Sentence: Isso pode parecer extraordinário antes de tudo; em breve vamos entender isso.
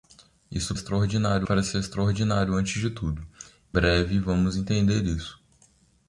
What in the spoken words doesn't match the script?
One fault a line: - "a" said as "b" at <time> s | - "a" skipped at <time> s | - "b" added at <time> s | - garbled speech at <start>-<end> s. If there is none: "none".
- "pode" said as "extraordinário" at 0.7 s
- "em" skipped at 3.3 s